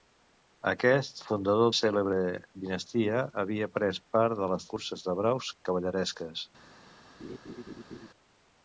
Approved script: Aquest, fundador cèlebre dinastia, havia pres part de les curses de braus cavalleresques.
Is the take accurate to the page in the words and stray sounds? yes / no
no